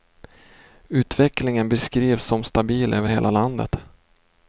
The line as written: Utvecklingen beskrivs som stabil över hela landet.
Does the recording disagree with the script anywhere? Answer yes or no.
no